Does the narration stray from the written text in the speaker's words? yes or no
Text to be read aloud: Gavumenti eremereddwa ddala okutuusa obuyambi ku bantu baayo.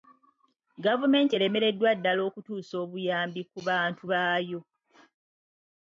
no